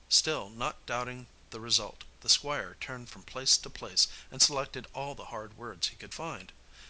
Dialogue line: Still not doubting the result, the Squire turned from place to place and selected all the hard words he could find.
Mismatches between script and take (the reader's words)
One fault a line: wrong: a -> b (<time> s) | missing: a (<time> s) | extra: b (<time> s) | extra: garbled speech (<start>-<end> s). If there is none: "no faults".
no faults